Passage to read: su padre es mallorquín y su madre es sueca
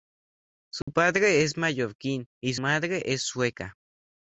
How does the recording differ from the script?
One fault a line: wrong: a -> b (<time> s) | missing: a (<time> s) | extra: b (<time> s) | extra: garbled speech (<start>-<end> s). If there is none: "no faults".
missing: su (2.5 s)